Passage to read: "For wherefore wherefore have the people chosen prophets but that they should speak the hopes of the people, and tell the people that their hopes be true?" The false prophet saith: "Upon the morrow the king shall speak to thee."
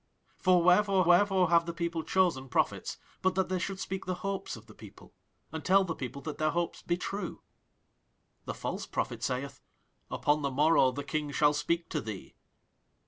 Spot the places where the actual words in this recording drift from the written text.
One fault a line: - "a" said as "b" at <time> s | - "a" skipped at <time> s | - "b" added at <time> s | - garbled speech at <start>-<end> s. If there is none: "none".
none